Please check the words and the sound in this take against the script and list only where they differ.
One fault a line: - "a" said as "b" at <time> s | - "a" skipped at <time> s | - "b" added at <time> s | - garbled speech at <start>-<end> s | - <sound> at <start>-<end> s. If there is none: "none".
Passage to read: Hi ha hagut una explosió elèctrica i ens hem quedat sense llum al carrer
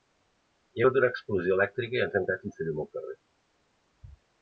none